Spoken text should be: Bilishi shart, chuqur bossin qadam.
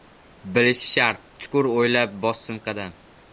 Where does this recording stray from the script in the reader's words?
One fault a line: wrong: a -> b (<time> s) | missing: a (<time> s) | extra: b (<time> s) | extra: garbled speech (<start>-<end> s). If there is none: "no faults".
extra: o‘ylab (1.7 s)